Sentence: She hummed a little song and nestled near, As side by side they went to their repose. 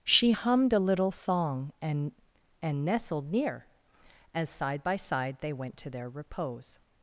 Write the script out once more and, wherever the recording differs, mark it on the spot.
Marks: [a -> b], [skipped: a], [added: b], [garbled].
She hummed a little song and [added: and] nestled near, As side by side they went to their repose.